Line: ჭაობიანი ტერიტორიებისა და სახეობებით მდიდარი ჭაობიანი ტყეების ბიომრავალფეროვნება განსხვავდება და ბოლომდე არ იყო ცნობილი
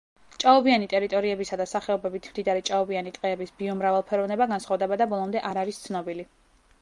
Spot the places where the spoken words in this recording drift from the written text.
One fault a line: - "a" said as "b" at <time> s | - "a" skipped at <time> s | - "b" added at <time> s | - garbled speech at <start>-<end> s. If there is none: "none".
- "იყო" said as "არის" at 5.6 s